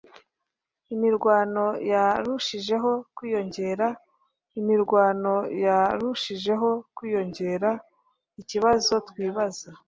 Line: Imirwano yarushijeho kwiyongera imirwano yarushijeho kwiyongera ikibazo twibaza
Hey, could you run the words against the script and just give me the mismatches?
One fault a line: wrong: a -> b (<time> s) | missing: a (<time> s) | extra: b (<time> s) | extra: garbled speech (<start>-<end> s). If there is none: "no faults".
no faults